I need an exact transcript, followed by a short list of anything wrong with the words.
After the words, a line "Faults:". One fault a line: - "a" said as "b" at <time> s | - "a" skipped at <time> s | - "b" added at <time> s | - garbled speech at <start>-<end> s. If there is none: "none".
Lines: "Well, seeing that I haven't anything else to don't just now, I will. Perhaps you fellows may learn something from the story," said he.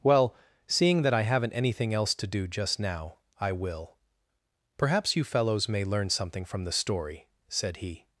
"Well, seeing that I haven't anything else to do just now, I will. Perhaps you fellows may learn something from the story," said he.
Faults:
- "don't" said as "do" at 2.3 s